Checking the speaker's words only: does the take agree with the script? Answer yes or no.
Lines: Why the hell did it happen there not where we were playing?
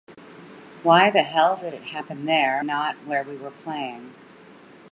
yes